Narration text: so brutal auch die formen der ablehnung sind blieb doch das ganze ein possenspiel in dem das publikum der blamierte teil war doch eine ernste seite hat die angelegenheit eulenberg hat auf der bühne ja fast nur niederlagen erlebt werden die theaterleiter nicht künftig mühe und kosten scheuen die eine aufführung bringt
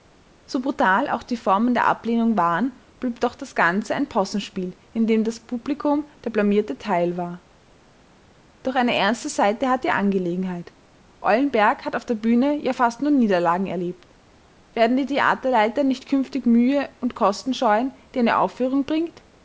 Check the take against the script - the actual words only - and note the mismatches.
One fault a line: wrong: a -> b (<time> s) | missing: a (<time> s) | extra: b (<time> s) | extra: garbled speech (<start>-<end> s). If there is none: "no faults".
wrong: sind -> waren (2.4 s)